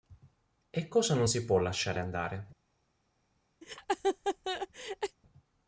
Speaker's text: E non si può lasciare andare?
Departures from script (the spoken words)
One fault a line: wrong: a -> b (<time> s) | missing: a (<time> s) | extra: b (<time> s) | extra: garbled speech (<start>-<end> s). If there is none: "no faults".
extra: cosa (0.9 s)